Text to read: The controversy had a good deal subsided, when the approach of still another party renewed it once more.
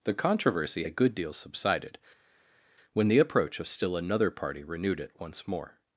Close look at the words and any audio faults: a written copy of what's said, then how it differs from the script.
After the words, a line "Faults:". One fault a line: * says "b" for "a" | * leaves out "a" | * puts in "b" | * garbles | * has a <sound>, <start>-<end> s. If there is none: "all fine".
The controversy a good deal subsided, when the approach of still another party renewed it once more.
Faults:
* leaves out "had"